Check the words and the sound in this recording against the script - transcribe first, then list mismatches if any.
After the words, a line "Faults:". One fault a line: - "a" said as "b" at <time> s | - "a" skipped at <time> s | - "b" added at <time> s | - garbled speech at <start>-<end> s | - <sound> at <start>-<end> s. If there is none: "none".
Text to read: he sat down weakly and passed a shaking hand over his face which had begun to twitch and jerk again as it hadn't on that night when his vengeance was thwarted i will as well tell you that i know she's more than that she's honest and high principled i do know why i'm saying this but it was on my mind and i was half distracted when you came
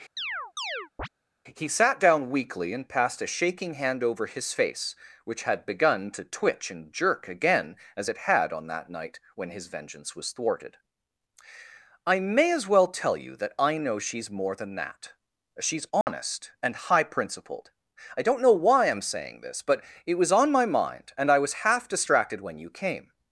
he sat down weakly and passed a shaking hand over his face which had begun to twitch and jerk again as it had on that night when his vengeance was thwarted i may as well tell you that i know she's more than that she's honest and high principled i don't know why i'm saying this but it was on my mind and i was half distracted when you came
Faults:
- chirp at 0.2-1.1 s
- "hadn't" said as "had" at 8.2 s
- "will" said as "may" at 12.2 s
- dropout at 16.0-16.1 s
- "do" said as "don't" at 18.2 s